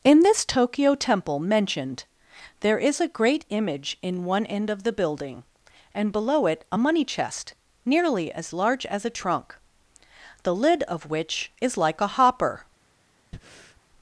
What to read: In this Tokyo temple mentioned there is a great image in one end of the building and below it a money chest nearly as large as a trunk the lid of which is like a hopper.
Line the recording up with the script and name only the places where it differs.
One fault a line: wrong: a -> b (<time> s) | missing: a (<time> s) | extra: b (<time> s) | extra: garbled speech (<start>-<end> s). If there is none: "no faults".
no faults